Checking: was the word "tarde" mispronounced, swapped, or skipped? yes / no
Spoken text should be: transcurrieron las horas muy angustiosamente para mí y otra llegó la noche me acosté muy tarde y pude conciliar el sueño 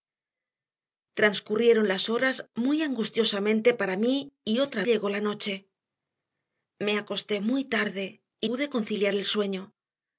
no